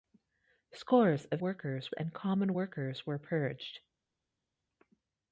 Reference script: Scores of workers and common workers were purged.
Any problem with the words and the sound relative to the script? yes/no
no